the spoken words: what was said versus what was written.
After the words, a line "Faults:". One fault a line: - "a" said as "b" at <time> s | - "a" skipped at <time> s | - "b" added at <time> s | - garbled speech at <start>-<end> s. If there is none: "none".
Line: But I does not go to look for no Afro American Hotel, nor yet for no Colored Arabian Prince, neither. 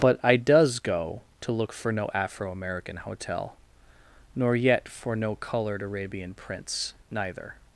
But I does go to look for no Afro American Hotel, nor yet for no Colored Arabian Prince, neither.
Faults:
- "not" skipped at 0.8 s